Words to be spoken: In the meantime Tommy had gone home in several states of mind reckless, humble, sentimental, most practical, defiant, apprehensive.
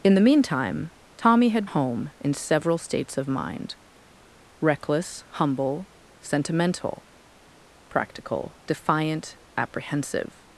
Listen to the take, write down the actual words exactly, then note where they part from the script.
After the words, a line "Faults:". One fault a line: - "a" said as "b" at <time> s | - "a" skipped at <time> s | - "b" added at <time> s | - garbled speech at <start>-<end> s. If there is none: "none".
In the meantime Tommy had home in several states of mind reckless, humble, sentimental, practical, defiant, apprehensive.
Faults:
- "gone" skipped at 1.7 s
- "most" skipped at 7.0 s